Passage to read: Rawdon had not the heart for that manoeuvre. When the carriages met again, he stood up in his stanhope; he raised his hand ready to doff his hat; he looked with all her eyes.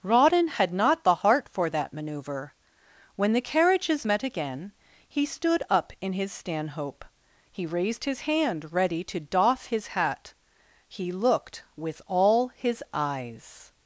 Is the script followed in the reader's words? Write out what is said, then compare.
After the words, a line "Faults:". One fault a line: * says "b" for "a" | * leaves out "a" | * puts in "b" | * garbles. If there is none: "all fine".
Rawdon had not the heart for that manoeuvre. When the carriages met again, he stood up in his stanhope; he raised his hand ready to doff his hat; he looked with all his eyes.
Faults:
* says "his" for "her"